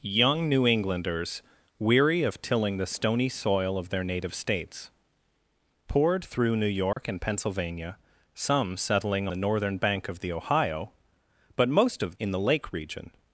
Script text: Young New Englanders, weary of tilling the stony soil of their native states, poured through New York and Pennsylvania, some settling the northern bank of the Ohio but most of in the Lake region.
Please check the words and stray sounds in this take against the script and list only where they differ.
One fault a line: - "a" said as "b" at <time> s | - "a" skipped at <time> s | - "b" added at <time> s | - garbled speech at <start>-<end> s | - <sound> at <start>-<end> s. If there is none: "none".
- dropout at 6.9-7.0 s